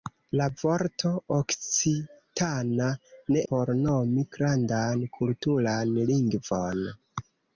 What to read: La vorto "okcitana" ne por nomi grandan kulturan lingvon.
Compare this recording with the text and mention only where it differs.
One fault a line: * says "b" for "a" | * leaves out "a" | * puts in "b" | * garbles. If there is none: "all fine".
all fine